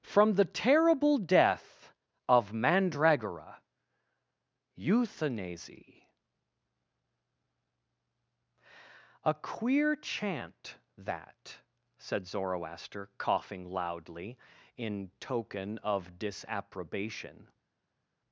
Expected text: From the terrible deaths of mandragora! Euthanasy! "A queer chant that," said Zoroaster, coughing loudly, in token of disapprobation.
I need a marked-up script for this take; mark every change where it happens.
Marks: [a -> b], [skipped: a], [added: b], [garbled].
From the terrible [deaths -> death] of mandragora! Euthanasy! "A queer chant that," said Zoroaster, coughing loudly, in token of disapprobation.